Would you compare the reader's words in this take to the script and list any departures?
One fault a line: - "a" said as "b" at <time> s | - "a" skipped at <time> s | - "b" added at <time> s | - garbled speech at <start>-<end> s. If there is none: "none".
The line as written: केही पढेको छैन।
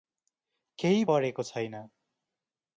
none